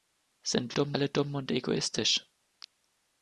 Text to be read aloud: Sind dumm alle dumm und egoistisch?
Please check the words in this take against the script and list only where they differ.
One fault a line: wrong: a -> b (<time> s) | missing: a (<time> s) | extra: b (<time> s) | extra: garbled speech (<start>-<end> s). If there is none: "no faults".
no faults